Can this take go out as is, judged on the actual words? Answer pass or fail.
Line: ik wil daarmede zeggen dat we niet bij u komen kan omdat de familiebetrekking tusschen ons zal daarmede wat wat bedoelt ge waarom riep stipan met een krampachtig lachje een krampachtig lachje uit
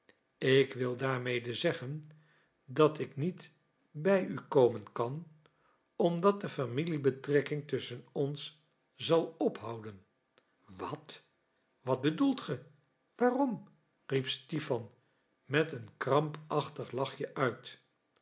fail